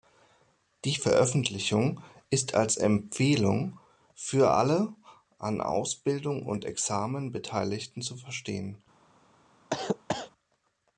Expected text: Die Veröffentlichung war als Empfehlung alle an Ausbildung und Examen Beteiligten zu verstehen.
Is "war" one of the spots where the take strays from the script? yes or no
yes